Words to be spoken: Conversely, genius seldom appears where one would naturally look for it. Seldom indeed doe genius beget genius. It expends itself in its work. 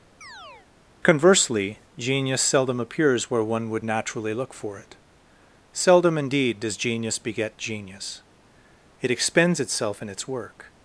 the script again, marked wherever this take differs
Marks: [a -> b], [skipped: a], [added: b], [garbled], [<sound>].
[chirp] Conversely, genius seldom appears where one would naturally look for it. Seldom indeed [doe -> does] genius beget genius. It expends itself in its work.